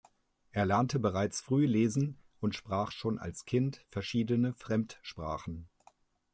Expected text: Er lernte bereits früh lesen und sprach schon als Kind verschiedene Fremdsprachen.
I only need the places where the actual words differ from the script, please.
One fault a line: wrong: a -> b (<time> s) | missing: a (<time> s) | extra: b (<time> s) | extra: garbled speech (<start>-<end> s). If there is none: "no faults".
no faults